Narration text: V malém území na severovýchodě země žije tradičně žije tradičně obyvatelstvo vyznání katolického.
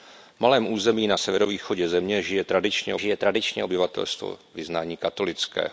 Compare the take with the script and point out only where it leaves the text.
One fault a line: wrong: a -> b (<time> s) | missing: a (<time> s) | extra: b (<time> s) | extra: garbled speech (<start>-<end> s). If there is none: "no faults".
no faults